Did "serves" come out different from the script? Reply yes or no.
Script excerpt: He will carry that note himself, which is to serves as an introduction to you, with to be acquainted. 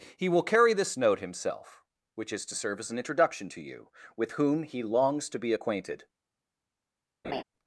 yes